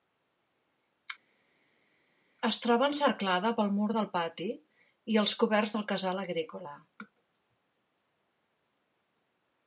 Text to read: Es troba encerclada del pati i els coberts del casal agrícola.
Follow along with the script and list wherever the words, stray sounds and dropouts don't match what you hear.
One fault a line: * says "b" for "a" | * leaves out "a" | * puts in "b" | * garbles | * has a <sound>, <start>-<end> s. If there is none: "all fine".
* puts in "pel mur"